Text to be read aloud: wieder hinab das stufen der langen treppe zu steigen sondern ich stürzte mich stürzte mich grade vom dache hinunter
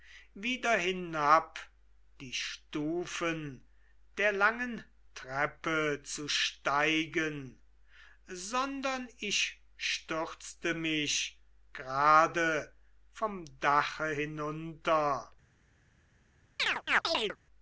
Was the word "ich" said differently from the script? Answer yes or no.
no